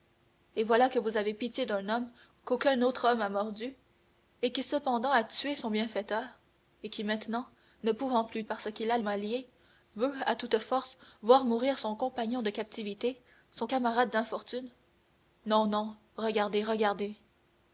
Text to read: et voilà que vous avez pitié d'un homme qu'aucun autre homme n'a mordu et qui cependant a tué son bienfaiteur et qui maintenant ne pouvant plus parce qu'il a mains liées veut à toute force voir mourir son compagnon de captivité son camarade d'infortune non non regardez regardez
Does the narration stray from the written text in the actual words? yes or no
no